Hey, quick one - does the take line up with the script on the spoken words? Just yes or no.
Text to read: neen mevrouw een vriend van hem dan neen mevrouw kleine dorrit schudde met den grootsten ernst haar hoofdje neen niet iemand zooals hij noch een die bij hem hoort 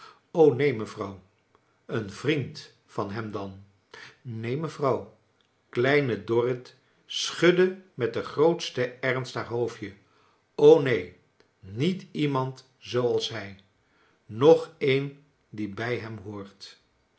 yes